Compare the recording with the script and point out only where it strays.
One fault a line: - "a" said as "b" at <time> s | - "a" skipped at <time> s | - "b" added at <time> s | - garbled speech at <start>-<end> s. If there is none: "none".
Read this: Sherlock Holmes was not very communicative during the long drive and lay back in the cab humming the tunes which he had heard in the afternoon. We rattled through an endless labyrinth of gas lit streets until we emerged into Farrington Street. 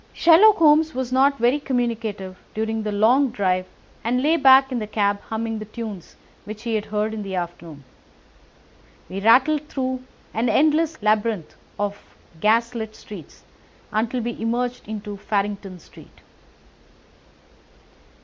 none